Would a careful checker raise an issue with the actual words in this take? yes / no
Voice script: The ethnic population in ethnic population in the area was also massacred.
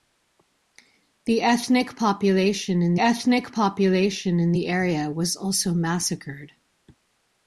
no